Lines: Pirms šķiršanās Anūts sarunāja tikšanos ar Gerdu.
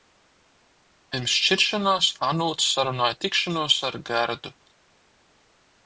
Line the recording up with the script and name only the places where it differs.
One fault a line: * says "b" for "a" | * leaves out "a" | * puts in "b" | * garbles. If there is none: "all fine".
all fine